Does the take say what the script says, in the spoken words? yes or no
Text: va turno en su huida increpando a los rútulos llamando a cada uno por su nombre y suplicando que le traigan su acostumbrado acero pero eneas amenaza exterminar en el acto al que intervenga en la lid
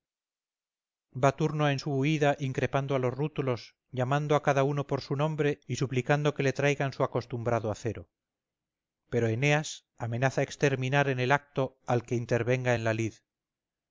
yes